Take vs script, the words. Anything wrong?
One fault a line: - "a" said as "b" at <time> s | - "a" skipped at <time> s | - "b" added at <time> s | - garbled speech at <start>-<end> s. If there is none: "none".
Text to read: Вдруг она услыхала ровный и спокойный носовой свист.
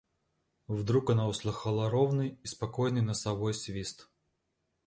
none